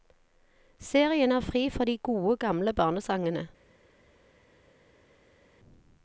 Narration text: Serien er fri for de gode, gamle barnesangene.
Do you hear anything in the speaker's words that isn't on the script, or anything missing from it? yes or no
no